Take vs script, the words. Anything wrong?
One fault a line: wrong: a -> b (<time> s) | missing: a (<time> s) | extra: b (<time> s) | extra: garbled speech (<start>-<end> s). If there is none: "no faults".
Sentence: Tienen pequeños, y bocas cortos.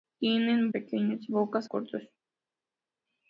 no faults